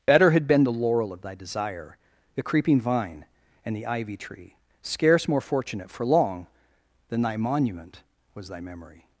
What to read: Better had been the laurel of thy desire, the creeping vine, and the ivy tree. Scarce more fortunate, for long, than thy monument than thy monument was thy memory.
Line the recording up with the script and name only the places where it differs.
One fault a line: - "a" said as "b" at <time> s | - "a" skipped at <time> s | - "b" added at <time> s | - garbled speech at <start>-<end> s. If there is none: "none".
- "than thy monument" skipped at 8.0 s